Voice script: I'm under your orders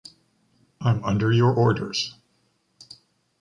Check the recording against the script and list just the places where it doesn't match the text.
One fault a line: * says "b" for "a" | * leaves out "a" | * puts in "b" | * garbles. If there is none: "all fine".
all fine